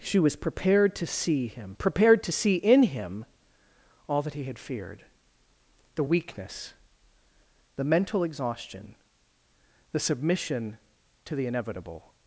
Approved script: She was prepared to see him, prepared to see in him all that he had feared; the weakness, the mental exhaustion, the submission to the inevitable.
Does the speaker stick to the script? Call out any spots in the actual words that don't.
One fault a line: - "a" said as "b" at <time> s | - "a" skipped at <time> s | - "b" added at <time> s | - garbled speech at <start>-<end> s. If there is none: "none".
none